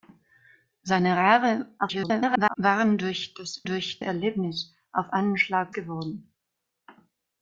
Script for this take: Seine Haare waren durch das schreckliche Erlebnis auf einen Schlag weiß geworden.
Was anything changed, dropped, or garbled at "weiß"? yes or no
yes